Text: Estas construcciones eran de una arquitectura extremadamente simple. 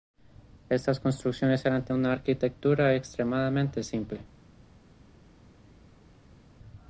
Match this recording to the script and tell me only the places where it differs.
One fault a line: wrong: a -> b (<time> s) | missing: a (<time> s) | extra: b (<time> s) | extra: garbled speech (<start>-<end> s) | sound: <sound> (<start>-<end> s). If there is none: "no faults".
no faults